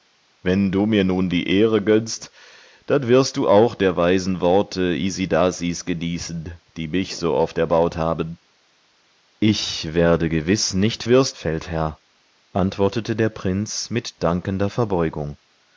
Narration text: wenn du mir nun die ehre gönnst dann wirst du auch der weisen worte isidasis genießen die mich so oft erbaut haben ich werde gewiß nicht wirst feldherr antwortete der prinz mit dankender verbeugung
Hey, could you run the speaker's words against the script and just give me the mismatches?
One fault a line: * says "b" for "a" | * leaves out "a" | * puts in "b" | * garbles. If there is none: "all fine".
all fine